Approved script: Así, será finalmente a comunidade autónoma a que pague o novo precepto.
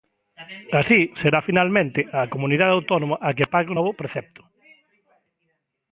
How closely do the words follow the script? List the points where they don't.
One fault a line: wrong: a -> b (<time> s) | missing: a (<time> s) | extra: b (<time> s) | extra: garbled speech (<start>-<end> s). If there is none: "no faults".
no faults